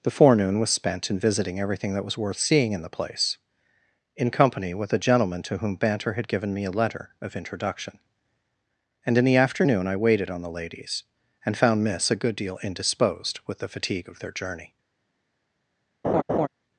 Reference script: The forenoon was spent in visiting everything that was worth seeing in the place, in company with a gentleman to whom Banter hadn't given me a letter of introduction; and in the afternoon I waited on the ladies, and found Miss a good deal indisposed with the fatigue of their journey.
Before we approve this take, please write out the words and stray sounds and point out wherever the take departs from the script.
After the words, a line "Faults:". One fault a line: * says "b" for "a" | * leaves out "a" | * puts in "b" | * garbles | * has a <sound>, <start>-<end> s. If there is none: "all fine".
The forenoon was spent in visiting everything that was worth seeing in the place, in company with a gentleman to whom Banter had given me a letter of introduction; and in the afternoon I waited on the ladies, and found Miss a good deal indisposed with the fatigue of their journey.
Faults:
* says "had" for "hadn't"
* has a laugh, 16.0-16.5 s